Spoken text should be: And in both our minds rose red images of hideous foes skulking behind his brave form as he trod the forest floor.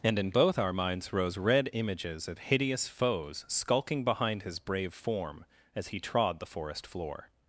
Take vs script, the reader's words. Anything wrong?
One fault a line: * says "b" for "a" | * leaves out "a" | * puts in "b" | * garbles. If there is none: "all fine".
all fine